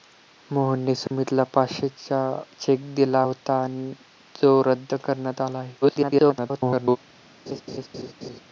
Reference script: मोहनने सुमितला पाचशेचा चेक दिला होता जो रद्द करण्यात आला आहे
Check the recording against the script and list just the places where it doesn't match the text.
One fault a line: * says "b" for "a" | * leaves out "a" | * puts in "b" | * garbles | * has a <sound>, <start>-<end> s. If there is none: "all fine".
* has a dropout, 1.1-1.1 s
* garbles
* has a laugh, 7.5-8.4 s